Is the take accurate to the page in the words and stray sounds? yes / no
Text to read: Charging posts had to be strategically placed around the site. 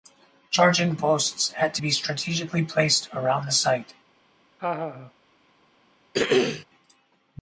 no